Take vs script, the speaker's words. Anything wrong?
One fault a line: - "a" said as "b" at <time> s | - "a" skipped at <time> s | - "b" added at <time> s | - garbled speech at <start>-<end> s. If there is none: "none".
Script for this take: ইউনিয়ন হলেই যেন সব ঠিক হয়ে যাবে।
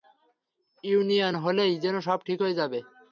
none